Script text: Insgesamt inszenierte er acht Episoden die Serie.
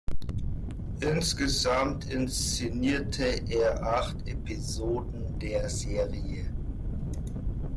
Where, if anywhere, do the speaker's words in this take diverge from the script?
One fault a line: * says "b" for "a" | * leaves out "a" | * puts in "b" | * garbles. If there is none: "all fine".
* says "der" for "die"